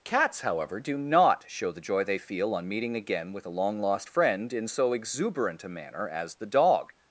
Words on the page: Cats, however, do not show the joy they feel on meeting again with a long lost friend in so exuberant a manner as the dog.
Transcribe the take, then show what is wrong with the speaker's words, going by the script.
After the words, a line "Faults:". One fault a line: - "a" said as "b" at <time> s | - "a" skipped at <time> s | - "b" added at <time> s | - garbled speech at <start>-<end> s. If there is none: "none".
Cats, however, do not show the joy they feel on meeting again with a long lost friend in so exuberant a manner as the dog.
Faults:
none